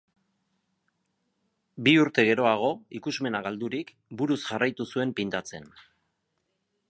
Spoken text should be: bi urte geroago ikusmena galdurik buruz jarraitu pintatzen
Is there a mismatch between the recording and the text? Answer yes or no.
yes